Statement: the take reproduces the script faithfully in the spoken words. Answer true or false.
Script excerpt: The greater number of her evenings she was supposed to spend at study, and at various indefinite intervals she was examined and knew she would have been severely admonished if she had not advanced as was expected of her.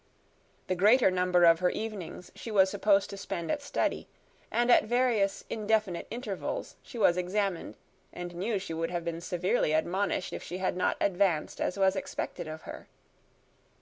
true